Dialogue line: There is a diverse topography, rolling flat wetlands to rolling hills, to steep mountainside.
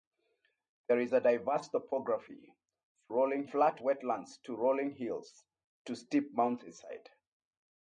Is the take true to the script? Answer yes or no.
yes